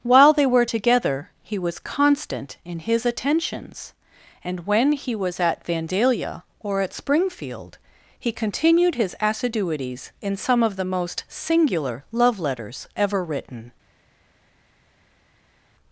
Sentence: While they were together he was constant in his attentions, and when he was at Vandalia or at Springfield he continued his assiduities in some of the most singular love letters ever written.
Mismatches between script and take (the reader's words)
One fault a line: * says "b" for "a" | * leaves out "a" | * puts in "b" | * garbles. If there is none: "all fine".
all fine